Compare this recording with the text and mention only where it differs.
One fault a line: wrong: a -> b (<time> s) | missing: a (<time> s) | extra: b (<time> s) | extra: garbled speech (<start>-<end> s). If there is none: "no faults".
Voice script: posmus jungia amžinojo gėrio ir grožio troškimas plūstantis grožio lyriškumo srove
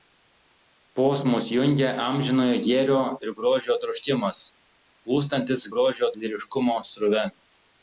no faults